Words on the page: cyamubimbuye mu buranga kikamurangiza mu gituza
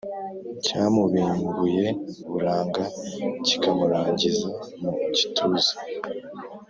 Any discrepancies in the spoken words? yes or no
yes